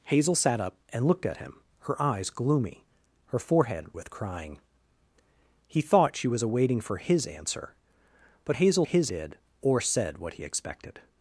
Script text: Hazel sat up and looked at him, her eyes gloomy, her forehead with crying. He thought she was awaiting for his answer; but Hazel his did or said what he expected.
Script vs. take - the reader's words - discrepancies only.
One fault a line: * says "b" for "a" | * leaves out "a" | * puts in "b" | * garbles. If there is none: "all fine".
all fine